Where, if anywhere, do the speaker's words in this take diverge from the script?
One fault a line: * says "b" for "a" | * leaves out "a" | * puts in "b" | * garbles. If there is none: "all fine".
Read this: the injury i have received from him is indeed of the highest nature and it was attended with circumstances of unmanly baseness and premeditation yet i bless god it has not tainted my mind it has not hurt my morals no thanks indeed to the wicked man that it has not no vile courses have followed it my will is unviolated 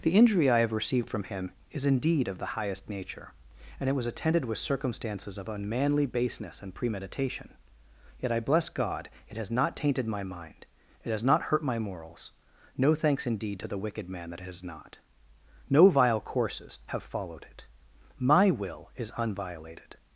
all fine